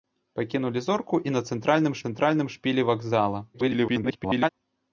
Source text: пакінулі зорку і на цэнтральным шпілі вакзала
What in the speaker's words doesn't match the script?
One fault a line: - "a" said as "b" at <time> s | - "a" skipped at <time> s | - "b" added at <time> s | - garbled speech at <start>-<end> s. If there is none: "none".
- "цэнтральным" added at 2.0 s
- garbled speech at 3.5-4.5 s